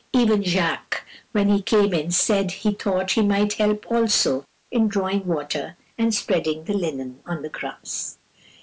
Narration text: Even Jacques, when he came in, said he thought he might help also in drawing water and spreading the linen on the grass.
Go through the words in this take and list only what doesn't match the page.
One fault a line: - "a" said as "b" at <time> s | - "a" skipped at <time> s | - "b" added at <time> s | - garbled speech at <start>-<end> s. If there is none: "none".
none